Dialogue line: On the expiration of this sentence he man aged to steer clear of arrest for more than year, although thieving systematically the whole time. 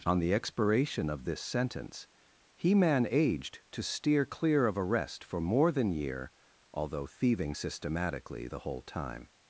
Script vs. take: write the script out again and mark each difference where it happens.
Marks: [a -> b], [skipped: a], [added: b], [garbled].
On the expiration of this sentence he man aged to steer clear of arrest for more than year, although thieving systematically the whole time.